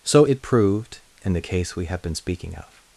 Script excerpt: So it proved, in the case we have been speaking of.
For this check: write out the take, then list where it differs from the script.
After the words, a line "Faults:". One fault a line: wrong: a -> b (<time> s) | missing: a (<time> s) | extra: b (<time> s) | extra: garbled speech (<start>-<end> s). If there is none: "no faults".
So it proved, in the case we have been speaking of.
Faults:
no faults